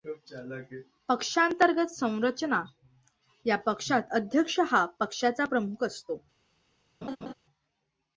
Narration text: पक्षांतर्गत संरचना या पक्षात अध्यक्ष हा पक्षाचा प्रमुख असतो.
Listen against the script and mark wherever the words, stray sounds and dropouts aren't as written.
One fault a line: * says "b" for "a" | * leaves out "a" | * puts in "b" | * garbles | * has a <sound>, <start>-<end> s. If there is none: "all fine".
* has a laugh, 7.0-7.3 s